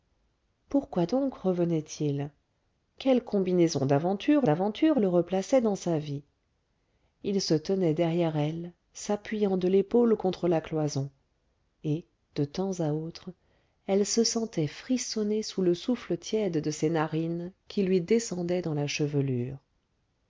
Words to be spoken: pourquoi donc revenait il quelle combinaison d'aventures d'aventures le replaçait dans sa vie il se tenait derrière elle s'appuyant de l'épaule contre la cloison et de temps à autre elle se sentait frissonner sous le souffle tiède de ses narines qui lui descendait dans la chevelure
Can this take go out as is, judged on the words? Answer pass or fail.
pass